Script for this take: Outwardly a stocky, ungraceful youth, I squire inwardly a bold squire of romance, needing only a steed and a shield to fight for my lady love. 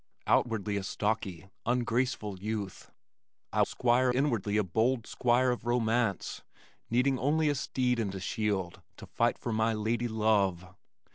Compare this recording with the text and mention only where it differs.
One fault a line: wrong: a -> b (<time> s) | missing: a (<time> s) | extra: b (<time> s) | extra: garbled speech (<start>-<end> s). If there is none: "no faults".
no faults